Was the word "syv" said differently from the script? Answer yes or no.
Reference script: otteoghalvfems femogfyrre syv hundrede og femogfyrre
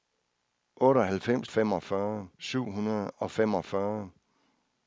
no